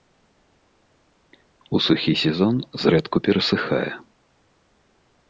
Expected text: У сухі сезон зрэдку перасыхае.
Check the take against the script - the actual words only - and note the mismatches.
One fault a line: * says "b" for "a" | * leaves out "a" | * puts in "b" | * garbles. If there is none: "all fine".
all fine